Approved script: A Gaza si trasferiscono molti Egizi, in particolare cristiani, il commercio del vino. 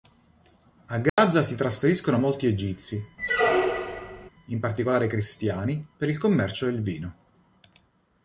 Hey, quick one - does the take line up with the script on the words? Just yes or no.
no